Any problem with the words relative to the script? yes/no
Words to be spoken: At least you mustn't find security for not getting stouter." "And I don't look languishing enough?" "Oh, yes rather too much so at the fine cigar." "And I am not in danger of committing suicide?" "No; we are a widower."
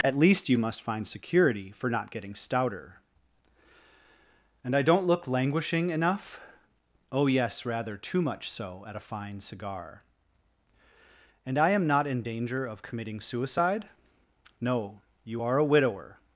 yes